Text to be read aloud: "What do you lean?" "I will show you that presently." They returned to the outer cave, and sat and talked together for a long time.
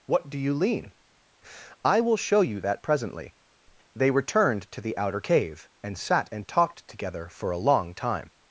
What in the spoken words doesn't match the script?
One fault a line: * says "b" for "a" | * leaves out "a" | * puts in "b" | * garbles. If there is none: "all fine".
all fine